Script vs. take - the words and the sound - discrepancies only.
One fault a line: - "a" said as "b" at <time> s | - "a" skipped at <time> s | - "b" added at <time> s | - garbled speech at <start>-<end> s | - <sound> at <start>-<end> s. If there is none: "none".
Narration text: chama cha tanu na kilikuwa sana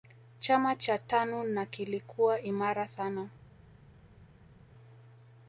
- "imara" added at 2.4 s